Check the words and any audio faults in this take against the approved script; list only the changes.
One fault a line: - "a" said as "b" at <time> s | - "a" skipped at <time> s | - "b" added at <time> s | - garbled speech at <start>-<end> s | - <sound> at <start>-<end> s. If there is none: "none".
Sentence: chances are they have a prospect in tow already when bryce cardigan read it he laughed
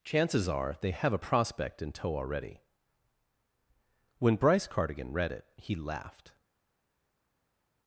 none